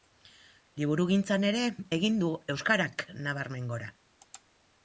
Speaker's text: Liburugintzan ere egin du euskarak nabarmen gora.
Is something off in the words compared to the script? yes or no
no